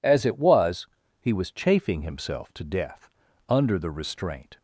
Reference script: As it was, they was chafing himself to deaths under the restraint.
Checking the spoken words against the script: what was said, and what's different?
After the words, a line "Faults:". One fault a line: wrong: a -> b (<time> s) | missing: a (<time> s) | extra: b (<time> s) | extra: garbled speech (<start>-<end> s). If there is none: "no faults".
As it was, he was chafing himself to death under the restraint.
Faults:
wrong: they -> he (1.2 s)
wrong: deaths -> death (2.6 s)